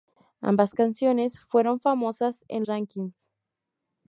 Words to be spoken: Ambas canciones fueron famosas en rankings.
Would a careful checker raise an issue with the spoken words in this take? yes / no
no